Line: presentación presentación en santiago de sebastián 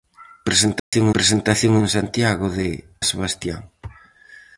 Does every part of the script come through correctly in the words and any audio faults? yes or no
no